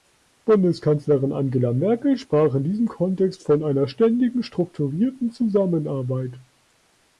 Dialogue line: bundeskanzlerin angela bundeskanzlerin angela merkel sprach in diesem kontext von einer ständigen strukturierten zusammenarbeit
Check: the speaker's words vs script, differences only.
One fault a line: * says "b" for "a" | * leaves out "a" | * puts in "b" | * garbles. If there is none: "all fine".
* leaves out "bundeskanzlerin angela"